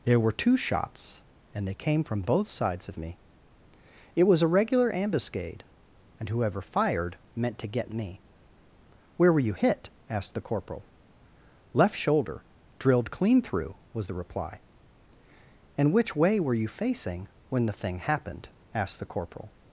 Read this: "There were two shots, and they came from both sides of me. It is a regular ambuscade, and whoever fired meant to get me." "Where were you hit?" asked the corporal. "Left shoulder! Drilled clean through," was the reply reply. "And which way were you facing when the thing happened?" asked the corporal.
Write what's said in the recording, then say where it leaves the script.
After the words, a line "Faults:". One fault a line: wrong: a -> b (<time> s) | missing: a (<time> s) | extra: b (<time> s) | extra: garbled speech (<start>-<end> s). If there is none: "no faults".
"There were two shots, and they came from both sides of me. It was a regular ambuscade, and whoever fired meant to get me." "Where were you hit?" asked the corporal. "Left shoulder! Drilled clean through," was the reply. "And which way were you facing when the thing happened?" asked the corporal.
Faults:
wrong: is -> was (4.2 s)
missing: reply (14.6 s)